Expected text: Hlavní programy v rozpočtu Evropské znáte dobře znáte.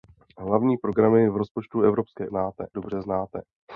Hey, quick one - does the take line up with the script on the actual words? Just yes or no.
yes